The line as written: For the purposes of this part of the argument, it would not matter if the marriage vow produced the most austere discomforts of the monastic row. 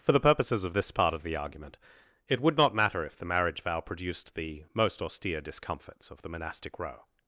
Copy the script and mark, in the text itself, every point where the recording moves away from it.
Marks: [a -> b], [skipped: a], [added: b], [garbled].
For the purposes of this part of the argument, it would not matter if the marriage vow produced the most austere discomforts of the monastic row.